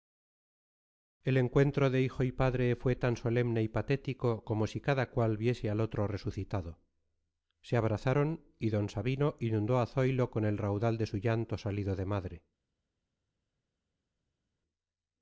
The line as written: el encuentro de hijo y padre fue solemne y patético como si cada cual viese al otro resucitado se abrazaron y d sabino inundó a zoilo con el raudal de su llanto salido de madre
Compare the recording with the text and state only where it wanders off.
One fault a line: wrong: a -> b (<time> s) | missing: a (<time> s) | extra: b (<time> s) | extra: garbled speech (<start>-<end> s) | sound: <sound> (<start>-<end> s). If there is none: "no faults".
extra: tan (3.0 s)